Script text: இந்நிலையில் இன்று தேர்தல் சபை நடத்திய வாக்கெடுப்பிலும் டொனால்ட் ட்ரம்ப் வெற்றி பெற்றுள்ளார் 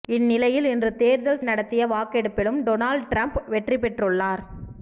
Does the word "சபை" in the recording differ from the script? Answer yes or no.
yes